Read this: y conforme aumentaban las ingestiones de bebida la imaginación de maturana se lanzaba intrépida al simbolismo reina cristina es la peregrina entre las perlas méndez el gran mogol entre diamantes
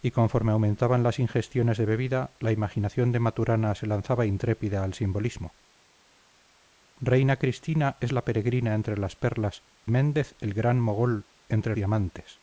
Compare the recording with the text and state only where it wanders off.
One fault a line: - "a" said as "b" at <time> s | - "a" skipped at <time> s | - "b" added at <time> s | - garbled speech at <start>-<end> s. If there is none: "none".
none